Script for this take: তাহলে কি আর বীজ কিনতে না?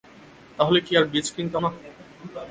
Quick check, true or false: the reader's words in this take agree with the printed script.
true